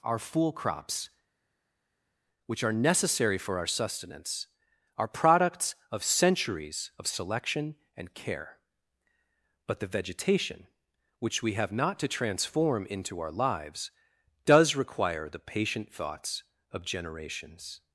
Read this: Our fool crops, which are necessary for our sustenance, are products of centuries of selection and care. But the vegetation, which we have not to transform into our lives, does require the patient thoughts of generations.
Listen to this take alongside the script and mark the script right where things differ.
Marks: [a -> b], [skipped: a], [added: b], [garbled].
Our fool crops, which are necessary for our sustenance, are products of centuries of selection and care. But the vegetation, which we have not to transform into our lives, does require the patient thoughts of generations.